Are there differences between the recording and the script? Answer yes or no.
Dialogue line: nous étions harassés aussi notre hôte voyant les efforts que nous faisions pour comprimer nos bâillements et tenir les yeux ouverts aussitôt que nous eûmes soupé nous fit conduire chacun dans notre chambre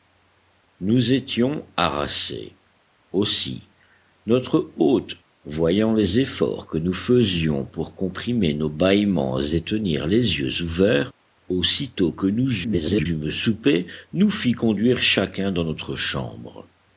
yes